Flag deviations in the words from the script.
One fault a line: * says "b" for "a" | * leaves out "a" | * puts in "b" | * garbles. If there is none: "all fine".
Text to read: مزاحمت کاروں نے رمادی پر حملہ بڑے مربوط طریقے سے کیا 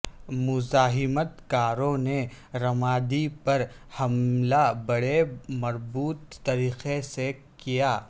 all fine